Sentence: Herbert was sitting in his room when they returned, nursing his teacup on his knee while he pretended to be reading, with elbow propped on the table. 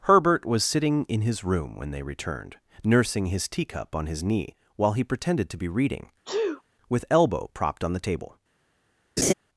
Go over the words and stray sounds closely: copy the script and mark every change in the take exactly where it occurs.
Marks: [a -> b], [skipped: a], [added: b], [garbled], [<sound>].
Herbert was sitting in his room when they returned, nursing his teacup on his knee while he pretended to be reading, [sneeze] with elbow propped on the table. [laugh]